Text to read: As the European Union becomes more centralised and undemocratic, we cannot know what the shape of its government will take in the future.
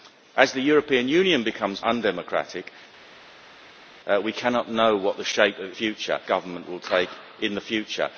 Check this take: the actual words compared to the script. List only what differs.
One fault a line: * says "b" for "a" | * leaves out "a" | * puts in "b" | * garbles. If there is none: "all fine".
* leaves out "more centralised and"
* says "future" for "its"